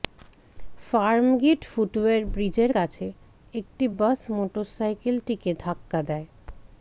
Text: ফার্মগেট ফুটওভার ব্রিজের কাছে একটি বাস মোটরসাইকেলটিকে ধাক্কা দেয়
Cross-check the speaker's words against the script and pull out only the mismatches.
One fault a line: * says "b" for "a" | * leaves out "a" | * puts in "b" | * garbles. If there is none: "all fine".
all fine